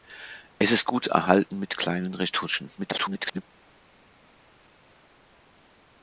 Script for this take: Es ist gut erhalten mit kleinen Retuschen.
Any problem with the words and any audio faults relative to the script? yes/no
yes